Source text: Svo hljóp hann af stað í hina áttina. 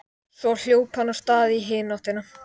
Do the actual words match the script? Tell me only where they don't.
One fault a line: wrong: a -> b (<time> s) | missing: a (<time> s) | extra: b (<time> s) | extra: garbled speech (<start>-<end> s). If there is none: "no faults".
no faults